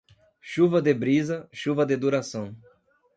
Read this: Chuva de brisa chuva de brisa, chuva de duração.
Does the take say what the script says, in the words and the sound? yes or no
no